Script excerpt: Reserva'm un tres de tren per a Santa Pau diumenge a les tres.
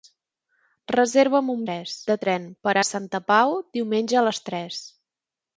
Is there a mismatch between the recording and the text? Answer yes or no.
no